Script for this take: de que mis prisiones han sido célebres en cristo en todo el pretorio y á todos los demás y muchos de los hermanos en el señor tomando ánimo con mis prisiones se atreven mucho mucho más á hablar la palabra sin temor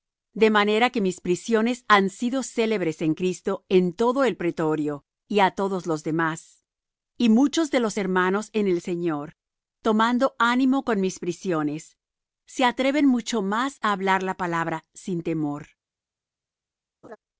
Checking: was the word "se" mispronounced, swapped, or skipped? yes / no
no